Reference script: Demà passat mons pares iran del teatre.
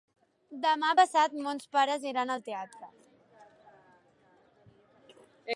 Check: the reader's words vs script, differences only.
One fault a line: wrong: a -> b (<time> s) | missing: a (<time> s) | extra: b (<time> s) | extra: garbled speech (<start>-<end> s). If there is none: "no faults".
wrong: del -> al (2.3 s)